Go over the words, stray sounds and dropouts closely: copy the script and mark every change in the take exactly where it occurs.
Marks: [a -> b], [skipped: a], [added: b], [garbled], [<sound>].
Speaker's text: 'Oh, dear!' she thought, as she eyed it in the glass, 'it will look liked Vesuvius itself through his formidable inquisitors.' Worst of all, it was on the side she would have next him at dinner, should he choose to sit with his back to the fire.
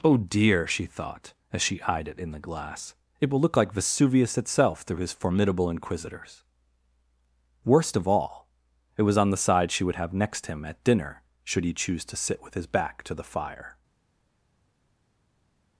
'Oh, dear!' she thought, as she eyed it in the glass, 'it will look [liked -> like] Vesuvius itself through his formidable inquisitors.' Worst of all, it was on the side she would have next him at dinner, should he choose to sit with his back to the fire.